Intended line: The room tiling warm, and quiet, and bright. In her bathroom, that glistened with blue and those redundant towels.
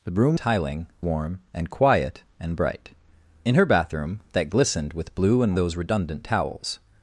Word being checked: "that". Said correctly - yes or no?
yes